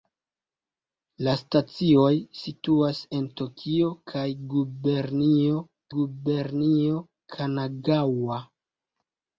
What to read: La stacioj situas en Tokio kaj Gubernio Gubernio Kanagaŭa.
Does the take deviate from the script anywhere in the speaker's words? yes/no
no